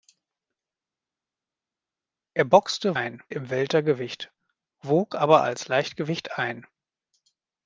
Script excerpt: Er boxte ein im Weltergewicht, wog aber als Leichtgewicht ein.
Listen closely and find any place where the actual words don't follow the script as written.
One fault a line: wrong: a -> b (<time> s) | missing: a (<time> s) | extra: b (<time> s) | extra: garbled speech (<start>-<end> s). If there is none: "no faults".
no faults